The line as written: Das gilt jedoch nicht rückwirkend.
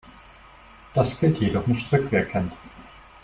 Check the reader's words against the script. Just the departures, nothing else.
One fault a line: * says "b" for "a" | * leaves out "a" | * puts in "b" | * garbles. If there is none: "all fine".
all fine